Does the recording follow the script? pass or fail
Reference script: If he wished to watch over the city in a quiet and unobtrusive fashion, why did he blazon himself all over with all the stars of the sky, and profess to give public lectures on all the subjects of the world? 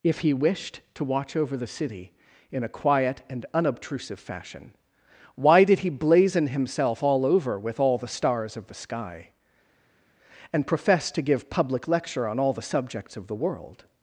fail